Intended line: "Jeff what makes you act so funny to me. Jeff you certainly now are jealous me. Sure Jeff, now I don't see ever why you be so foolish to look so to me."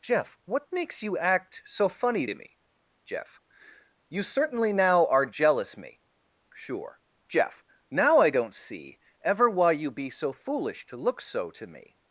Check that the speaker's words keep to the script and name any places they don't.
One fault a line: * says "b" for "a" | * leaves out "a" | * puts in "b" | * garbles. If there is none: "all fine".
all fine